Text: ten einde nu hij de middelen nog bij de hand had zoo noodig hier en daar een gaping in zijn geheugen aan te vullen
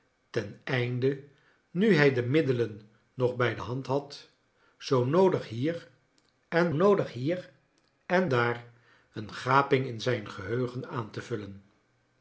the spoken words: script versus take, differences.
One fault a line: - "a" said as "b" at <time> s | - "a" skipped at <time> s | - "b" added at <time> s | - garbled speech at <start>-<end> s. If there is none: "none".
- "noodig hier en" added at 6.7 s